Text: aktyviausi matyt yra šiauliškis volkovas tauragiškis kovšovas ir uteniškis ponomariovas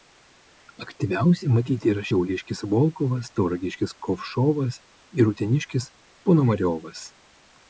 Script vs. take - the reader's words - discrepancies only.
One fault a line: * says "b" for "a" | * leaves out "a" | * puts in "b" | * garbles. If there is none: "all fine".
all fine